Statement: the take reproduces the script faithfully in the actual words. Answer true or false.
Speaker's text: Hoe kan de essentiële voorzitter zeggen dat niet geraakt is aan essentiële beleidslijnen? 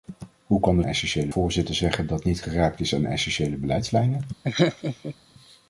true